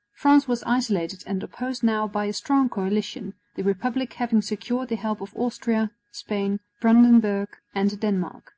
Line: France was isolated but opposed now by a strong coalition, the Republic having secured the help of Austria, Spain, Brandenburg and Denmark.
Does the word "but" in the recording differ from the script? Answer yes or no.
yes